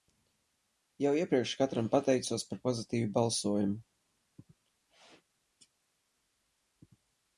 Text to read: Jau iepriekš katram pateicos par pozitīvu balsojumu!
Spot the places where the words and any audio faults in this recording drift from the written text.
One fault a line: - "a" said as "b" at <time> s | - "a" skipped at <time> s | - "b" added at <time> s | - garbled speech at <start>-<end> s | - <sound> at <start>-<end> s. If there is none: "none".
none